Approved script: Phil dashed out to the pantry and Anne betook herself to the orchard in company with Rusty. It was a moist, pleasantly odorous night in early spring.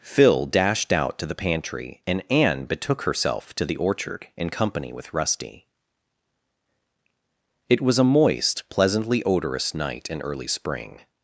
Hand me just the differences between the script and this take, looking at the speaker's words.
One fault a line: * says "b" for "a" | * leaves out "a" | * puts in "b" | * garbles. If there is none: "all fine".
all fine